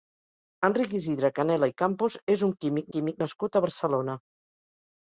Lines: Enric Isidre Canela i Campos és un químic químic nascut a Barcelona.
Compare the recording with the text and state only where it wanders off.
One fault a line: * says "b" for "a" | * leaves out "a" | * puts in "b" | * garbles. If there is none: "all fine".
all fine